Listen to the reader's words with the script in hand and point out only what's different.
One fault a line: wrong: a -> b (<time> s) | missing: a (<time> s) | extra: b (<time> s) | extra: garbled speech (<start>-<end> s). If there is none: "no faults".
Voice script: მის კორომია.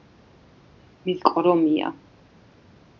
no faults